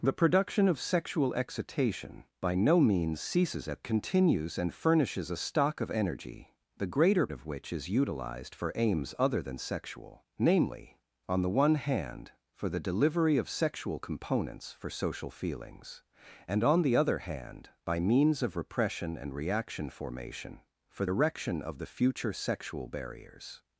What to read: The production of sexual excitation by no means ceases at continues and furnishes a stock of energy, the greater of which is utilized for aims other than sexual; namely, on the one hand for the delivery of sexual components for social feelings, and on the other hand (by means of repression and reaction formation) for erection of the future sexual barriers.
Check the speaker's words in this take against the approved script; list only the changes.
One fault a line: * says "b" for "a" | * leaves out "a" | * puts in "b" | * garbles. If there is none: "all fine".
all fine